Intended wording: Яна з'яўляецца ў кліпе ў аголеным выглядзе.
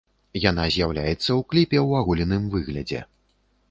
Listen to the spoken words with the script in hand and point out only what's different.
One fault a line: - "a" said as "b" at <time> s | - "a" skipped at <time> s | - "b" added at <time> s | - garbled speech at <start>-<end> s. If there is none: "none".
none